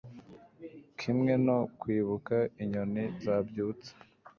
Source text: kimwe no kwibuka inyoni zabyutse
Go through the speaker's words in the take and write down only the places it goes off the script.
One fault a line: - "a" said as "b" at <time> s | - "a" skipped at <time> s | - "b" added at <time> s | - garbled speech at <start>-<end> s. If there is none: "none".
none